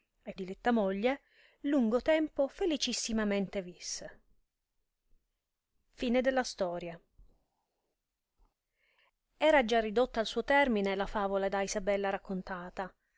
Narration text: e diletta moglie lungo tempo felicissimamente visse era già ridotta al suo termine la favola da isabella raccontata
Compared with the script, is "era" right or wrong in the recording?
right